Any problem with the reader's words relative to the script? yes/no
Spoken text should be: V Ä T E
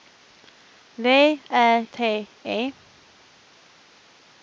no